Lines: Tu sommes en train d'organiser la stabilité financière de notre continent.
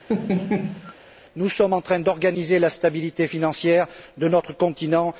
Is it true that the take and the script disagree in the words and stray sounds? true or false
true